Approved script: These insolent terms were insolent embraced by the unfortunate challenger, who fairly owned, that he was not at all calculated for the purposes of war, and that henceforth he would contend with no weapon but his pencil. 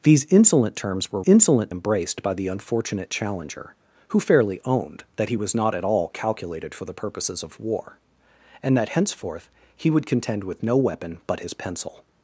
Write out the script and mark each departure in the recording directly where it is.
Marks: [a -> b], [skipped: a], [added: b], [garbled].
These insolent terms were insolent embraced by the unfortunate challenger, who fairly owned, that he was not at all calculated for the purposes of war, and that henceforth he would contend with no weapon but his pencil.